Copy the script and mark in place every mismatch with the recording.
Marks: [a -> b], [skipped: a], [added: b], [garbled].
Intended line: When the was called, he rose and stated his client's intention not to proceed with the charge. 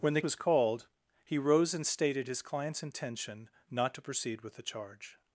When the was called, he rose and stated his client's intention not to proceed with the charge.